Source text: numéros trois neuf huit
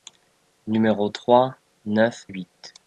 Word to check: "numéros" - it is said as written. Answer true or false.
true